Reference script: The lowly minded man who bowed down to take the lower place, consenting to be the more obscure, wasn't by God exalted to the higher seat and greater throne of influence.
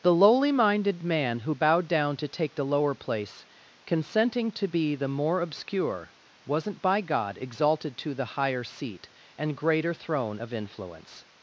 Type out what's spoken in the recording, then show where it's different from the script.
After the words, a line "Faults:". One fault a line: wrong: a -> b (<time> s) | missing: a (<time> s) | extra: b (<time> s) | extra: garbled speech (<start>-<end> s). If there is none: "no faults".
The lowly minded man who bowed down to take the lower place, consenting to be the more obscure, wasn't by God exalted to the higher seat and greater throne of influence.
Faults:
no faults